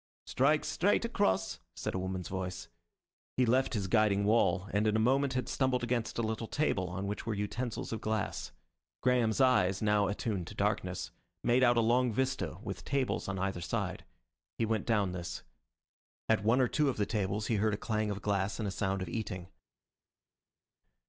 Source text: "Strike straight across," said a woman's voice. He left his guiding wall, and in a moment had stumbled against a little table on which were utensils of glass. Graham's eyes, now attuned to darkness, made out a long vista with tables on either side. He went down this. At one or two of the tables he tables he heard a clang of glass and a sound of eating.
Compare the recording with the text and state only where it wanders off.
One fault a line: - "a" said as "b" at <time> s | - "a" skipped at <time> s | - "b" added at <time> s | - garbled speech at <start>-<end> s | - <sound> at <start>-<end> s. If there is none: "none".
- "tables he" skipped at 17.6 s